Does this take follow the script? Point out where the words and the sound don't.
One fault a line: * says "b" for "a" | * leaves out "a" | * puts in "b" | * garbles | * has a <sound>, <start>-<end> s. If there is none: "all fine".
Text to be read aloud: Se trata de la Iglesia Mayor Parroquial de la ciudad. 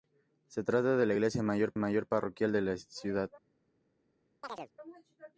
* puts in "Mayor"
* has a chirp, 4.4-4.7 s